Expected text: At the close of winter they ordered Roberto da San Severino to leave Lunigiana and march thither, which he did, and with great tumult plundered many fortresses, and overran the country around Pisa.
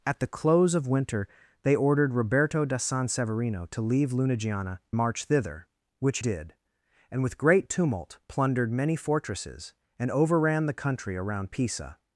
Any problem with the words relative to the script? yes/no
yes